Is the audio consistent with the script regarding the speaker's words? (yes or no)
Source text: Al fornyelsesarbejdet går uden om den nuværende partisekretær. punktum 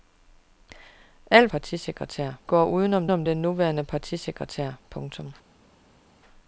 no